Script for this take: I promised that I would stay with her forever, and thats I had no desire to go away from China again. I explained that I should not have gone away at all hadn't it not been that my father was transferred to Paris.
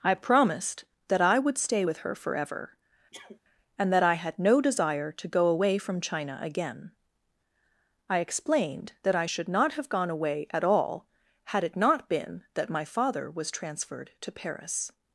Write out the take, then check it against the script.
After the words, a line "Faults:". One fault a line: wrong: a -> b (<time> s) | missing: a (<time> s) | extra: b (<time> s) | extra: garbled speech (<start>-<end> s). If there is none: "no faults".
I promised that I would stay with her forever, and that I had no desire to go away from China again. I explained that I should not have gone away at all had it not been that my father was transferred to Paris.
Faults:
wrong: thats -> that (3.9 s)
wrong: hadn't -> had (11.4 s)